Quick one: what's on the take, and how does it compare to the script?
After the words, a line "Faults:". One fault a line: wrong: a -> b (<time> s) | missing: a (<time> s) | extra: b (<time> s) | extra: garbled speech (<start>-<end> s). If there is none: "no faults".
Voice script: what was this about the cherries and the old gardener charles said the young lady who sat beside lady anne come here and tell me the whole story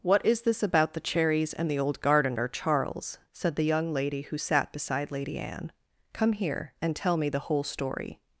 what is this about the cherries and the old gardener charles said the young lady who sat beside lady anne come here and tell me the whole story
Faults:
wrong: was -> is (0.2 s)